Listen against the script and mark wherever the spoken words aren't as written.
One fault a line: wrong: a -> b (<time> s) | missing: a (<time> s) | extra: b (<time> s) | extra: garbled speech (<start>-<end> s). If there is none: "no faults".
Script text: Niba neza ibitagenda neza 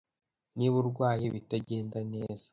wrong: neza -> urwaye (0.8 s)